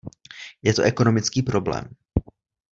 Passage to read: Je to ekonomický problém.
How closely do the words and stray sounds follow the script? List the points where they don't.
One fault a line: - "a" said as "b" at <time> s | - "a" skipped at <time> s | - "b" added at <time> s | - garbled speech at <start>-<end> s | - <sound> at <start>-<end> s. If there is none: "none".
none